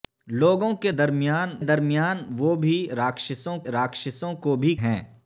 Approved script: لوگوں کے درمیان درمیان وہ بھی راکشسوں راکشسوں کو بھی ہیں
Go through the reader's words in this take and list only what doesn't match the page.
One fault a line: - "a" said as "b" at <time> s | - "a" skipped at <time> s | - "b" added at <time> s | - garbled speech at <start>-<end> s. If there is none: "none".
none